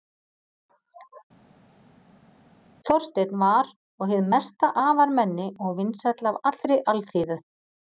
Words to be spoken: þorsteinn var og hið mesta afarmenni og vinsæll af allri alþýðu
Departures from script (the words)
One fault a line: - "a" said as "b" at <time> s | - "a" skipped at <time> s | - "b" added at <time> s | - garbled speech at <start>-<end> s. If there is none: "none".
none